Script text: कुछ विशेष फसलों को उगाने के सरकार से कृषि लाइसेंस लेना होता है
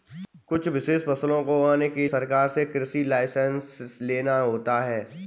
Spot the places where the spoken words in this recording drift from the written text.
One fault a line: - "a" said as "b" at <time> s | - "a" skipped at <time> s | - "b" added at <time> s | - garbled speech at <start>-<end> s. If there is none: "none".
none